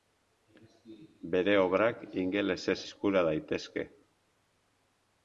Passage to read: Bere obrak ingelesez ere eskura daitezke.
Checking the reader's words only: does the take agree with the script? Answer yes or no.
no